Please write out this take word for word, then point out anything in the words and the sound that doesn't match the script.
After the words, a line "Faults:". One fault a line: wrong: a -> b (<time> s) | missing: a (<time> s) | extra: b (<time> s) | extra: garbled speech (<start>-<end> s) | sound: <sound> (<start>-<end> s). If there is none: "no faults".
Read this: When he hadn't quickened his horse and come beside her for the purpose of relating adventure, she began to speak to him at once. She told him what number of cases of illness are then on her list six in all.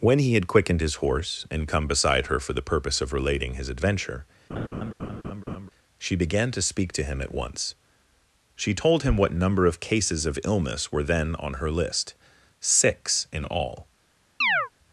When he had quickened his horse and come beside her for the purpose of relating his adventure, she began to speak to him at once. She told him what number of cases of illness were then on her list six in all.
Faults:
wrong: hadn't -> had (0.3 s)
extra: his (3.6 s)
sound: laugh (4.5-5.7 s)
wrong: are -> were (10.9 s)
sound: chirp (14.4-14.7 s)